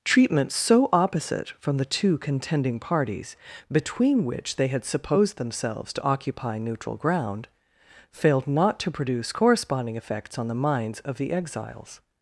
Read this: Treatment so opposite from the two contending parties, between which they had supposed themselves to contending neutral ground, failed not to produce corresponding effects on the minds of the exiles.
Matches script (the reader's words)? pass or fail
fail